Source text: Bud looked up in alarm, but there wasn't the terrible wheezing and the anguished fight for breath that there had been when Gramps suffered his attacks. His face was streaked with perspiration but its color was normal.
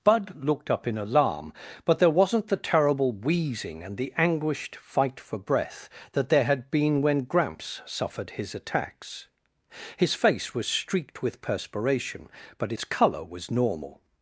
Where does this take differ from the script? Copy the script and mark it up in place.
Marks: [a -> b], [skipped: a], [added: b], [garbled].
Bud looked up in alarm, but there wasn't the terrible wheezing and the anguished fight for breath that there had been when Gramps suffered his attacks. His face was streaked with perspiration but its color was normal.